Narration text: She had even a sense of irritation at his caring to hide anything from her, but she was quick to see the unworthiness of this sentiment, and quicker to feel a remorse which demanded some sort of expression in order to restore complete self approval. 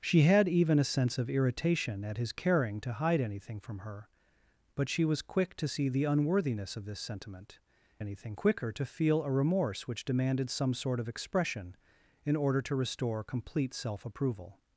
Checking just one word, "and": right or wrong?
wrong